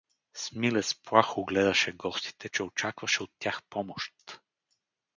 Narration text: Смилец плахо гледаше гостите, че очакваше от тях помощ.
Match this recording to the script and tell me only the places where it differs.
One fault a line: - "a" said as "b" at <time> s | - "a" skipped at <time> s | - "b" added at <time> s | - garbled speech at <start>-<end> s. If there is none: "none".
none